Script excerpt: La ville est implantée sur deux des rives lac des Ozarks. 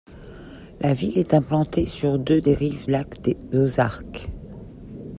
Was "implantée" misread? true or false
false